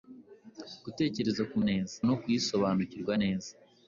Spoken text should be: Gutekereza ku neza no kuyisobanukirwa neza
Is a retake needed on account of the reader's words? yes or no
no